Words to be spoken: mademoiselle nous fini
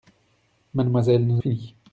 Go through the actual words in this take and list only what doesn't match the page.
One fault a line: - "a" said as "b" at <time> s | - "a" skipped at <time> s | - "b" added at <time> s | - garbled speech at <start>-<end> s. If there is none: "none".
none